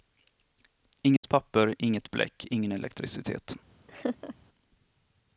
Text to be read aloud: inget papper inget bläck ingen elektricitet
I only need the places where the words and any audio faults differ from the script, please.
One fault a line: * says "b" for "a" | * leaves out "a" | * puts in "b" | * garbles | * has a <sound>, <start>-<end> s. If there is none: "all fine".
* has a dropout, 1.2-1.2 s
* has a laugh, 3.9-4.4 s